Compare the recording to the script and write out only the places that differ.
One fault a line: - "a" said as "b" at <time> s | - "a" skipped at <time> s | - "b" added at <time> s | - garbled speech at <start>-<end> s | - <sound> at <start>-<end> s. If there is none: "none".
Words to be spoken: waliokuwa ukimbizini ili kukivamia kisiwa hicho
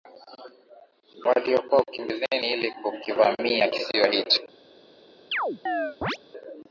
- chirp at 5.3-6.2 s